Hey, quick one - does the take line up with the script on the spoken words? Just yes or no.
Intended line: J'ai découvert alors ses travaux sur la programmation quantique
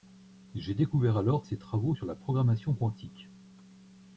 yes